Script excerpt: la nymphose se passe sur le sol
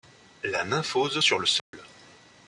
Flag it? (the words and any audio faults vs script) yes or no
yes